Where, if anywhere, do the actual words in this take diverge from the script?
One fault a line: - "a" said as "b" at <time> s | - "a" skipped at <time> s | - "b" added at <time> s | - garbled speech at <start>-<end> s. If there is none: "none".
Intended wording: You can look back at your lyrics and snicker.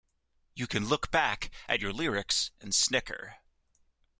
none